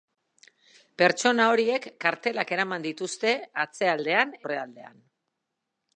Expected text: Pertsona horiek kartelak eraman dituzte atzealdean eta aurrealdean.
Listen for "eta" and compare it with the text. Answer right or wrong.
wrong